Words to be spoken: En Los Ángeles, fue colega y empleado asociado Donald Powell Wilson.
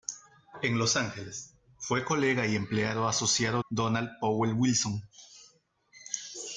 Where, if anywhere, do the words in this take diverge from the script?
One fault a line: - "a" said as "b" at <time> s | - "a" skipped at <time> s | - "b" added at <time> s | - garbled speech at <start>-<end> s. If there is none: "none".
none